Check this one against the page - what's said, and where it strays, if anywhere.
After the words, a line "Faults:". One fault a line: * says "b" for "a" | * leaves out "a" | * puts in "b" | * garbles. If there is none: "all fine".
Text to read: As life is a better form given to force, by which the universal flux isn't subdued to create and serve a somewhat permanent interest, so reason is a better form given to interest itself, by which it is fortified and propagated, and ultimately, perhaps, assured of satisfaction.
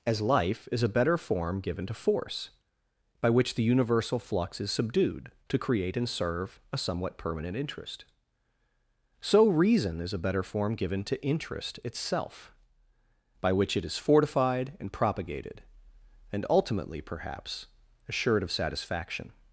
As life is a better form given to force, by which the universal flux is subdued to create and serve a somewhat permanent interest, so reason is a better form given to interest itself, by which it is fortified and propagated, and ultimately, perhaps, assured of satisfaction.
Faults:
* says "is" for "isn't"